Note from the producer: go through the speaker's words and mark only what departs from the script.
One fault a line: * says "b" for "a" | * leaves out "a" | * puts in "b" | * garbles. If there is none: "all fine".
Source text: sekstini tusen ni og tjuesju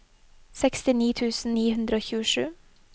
* puts in "hundre"